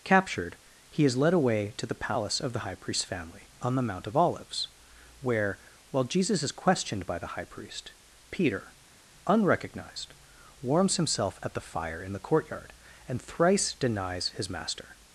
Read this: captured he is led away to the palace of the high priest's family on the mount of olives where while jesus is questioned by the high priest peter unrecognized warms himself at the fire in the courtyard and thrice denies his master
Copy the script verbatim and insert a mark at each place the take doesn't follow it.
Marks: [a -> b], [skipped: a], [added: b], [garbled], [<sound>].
captured he is led away to the palace of the high priest's family on the mount of olives where while jesus is questioned by the high priest peter unrecognized warms himself at the fire in the courtyard and thrice denies his master